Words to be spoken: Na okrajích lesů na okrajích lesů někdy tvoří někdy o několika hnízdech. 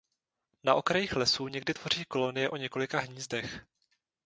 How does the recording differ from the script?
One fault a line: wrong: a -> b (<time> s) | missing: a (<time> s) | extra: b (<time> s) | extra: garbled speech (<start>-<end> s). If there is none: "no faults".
missing: na okrajích lesů (1.5 s)
wrong: někdy -> kolonie (2.0 s)